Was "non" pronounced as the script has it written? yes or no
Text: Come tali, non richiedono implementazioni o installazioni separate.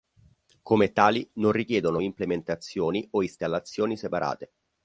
yes